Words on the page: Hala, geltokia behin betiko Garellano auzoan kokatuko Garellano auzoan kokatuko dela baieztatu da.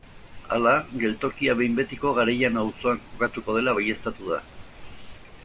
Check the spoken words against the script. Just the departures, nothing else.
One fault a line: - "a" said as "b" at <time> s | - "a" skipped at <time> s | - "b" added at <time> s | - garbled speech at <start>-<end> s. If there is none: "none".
- "Garellano auzoan kokatuko" skipped at 3.6 s